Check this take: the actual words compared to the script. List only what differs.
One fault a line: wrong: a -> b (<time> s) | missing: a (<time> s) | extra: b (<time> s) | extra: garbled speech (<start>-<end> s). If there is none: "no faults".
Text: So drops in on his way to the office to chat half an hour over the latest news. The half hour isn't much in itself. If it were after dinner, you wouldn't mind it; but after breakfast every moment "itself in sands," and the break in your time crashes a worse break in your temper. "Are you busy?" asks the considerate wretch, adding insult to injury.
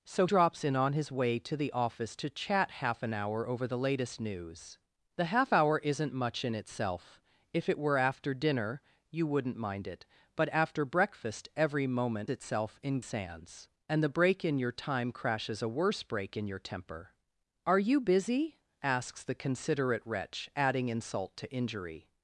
no faults